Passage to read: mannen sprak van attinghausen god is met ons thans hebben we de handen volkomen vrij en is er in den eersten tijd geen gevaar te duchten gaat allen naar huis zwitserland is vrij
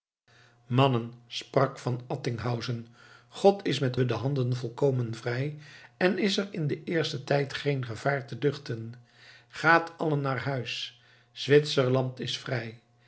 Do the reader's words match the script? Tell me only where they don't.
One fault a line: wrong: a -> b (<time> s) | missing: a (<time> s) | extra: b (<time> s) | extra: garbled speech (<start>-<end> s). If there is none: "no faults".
missing: ons thans hebben (4.0 s)